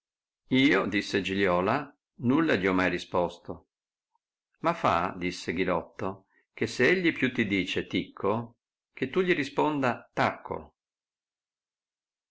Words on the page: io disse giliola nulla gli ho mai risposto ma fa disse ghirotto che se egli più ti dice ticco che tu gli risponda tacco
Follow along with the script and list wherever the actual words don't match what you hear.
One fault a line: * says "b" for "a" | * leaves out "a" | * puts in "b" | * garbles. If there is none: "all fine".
all fine